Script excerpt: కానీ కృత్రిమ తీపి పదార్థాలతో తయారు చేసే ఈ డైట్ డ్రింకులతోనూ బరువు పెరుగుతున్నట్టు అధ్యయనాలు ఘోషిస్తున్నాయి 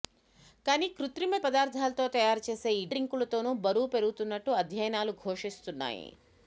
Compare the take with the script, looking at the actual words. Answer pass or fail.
fail